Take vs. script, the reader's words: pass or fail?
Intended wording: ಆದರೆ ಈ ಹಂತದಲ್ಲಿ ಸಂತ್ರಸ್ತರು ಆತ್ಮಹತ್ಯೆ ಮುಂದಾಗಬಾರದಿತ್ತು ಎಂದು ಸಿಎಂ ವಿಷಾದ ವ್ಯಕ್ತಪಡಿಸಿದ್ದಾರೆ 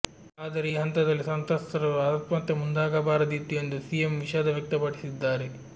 pass